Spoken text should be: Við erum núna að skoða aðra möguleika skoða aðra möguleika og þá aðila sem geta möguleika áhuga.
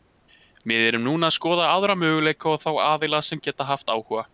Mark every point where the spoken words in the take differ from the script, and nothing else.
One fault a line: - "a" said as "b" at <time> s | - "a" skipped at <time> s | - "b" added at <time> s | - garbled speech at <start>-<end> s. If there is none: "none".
- "skoða aðra möguleika" skipped at 2.5 s
- "möguleika" said as "haft" at 3.7 s